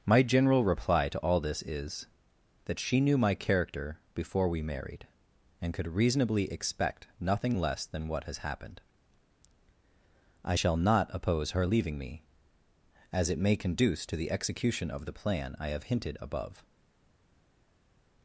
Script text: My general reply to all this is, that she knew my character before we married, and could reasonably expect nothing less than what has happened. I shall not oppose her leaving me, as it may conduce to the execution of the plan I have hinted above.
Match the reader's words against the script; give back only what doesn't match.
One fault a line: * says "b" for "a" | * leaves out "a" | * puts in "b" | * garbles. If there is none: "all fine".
all fine